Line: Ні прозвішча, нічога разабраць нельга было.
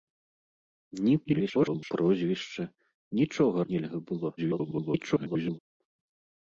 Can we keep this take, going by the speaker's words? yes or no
no